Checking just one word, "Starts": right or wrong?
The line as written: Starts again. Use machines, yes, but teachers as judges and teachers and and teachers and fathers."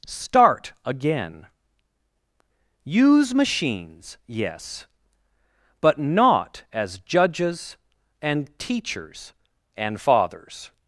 wrong